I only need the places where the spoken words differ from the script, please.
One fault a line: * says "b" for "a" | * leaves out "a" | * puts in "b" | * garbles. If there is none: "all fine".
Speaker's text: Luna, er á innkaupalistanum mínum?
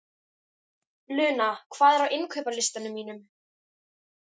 * puts in "hvað"